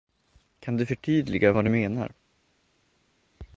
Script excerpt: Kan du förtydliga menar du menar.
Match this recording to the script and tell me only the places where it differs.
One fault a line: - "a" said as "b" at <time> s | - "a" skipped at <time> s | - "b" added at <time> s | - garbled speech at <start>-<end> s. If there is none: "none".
- "menar" said as "vad" at 1.5 s